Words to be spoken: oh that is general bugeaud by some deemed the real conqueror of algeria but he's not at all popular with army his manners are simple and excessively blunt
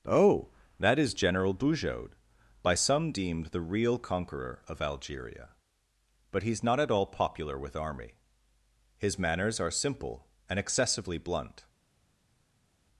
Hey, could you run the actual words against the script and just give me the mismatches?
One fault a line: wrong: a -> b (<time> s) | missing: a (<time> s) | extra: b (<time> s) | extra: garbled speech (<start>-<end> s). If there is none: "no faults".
no faults